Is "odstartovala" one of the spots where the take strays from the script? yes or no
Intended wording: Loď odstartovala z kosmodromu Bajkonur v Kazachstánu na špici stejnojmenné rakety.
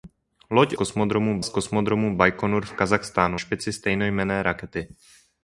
yes